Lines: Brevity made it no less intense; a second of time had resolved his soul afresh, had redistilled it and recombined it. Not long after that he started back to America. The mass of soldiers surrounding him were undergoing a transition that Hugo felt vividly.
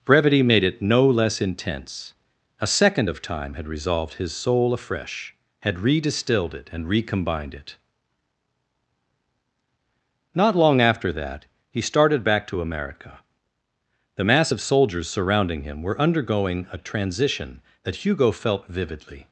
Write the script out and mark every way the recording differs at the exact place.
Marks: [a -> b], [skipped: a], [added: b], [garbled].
Brevity made it no less intense; a second of time had resolved his soul afresh, had redistilled it and recombined it. Not long after that he started back to America. The mass of soldiers surrounding him were undergoing a transition that Hugo felt vividly.